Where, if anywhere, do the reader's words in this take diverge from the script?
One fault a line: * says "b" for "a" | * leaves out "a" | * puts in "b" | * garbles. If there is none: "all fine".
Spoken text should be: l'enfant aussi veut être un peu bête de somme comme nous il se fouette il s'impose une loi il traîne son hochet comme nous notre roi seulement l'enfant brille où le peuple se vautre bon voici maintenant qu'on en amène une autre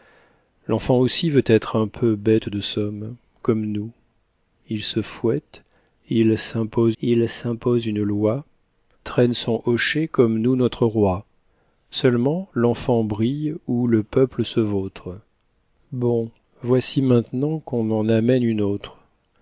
* puts in "il s'impose"
* leaves out "il"